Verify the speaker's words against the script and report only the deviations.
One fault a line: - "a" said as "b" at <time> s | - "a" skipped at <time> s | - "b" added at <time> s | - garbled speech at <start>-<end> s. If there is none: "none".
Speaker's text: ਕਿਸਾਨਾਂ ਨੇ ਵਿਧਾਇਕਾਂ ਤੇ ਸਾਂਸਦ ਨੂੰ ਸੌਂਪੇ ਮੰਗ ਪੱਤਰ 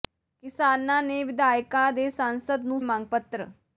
- "ਸੌਂਪੇ" skipped at 2.8 s